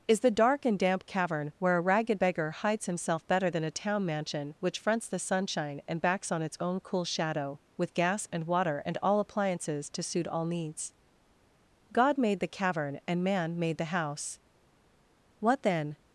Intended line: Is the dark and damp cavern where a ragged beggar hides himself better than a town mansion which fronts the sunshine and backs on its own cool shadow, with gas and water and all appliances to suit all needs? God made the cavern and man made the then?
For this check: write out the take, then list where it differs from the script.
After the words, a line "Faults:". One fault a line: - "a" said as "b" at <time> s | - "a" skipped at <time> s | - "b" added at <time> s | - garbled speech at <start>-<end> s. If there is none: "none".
Is the dark and damp cavern where a ragged beggar hides himself better than a town mansion which fronts the sunshine and backs on its own cool shadow, with gas and water and all appliances to suit all needs? God made the cavern and man made the house! What then?
Faults:
- "house What" added at 13.9 s